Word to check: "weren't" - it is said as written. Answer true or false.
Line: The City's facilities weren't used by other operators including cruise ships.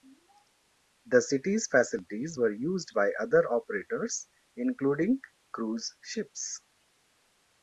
false